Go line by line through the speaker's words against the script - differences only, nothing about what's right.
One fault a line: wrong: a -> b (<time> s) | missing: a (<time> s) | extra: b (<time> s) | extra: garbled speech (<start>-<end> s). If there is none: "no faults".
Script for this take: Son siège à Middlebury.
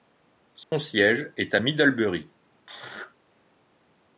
extra: est (1.4 s)